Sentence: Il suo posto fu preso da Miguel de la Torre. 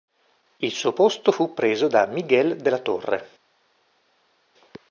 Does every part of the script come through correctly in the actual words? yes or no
yes